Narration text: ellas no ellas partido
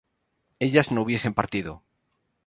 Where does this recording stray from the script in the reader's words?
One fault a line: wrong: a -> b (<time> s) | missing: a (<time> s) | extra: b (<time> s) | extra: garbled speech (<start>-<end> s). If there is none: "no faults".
wrong: ellas -> hubiesen (1.0 s)